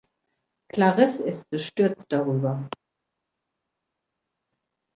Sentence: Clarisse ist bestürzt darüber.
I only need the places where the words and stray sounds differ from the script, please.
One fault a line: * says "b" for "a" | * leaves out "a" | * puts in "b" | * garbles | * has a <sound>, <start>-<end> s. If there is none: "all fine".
all fine